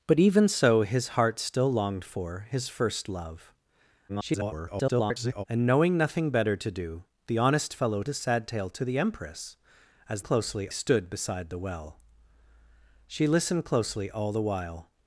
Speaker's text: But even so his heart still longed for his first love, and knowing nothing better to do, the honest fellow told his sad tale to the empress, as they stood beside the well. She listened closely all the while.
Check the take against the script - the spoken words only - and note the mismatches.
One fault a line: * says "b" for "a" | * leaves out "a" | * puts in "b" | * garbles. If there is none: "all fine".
* garbles
* leaves out "told"
* says "closely" for "they"